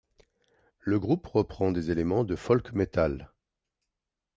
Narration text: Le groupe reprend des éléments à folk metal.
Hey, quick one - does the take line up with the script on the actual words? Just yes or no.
no